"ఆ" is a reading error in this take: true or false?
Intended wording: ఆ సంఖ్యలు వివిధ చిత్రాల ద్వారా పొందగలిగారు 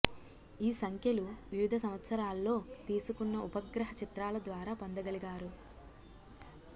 true